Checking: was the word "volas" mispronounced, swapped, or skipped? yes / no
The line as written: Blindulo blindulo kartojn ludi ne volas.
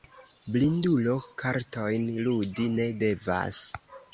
yes